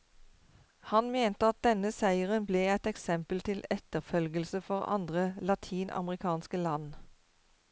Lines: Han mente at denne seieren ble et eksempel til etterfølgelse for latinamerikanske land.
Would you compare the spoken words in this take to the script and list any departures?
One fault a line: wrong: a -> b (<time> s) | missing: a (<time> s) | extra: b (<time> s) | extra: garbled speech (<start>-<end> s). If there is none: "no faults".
extra: andre (5.0 s)